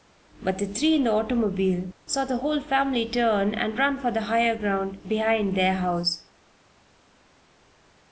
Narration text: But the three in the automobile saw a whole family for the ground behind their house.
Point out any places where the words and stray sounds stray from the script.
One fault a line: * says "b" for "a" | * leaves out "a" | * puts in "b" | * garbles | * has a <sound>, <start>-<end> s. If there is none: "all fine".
* says "the" for "a"
* puts in "turn and run"
* puts in "higher"